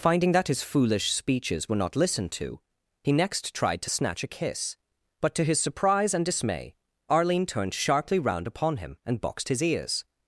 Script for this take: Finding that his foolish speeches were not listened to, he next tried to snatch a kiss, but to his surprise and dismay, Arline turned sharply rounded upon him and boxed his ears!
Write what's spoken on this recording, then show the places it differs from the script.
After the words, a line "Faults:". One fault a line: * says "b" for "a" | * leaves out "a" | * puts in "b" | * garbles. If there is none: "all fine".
Finding that his foolish speeches were not listened to, he next tried to snatch a kiss, but to his surprise and dismay, Arline turned sharply round upon him and boxed his ears!
Faults:
* says "round" for "rounded"